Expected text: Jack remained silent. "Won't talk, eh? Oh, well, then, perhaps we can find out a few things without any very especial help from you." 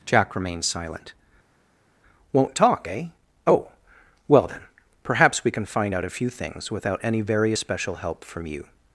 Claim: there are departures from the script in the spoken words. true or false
false